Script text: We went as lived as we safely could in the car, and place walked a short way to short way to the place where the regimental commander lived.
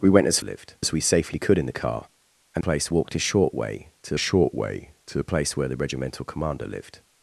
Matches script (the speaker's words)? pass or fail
pass